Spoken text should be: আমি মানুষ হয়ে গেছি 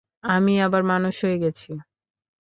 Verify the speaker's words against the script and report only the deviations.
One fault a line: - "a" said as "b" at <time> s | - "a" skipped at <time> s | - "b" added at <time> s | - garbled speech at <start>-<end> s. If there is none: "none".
- "আবার" added at 0.6 s